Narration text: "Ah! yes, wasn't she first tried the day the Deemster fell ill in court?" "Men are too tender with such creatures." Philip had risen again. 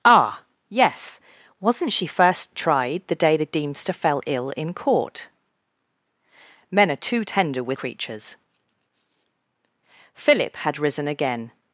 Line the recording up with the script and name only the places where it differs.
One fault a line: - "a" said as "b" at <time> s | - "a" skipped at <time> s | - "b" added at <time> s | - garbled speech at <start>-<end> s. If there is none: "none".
- "such" skipped at 7.8 s